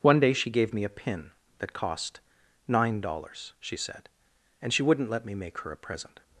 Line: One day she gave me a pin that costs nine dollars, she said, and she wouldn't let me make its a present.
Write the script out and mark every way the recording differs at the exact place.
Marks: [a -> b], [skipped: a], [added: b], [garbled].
One day she gave me a pin that [costs -> cost] nine dollars, she said, and she wouldn't let me make [its -> her] a present.